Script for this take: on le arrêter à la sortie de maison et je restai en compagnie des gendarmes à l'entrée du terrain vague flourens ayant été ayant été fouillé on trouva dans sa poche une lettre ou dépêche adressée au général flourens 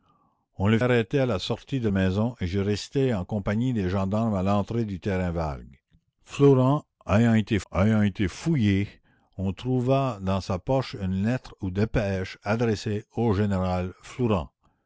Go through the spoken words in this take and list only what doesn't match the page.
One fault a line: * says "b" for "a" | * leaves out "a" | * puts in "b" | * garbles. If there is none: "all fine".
all fine